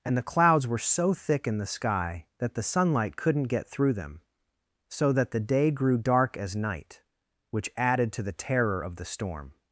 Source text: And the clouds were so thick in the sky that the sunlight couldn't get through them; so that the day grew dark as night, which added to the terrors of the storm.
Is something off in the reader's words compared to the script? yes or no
yes